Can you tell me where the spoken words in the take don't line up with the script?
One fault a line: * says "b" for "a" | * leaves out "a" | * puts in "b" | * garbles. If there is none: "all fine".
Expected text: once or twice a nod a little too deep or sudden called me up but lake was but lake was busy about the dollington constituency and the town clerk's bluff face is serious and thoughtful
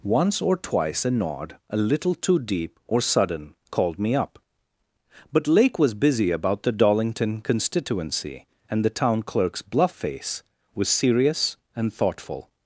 * leaves out "but lake was"
* says "was" for "is"